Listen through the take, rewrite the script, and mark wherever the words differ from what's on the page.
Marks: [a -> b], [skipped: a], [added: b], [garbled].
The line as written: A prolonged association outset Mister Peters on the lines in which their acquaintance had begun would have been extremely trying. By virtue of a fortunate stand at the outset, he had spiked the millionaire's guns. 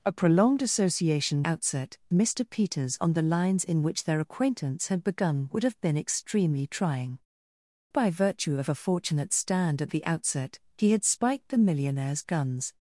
A prolonged association outset Mister Peters on the lines in which their acquaintance had begun would have been extremely trying. By virtue of a fortunate stand at the outset, he had spiked the millionaire's guns.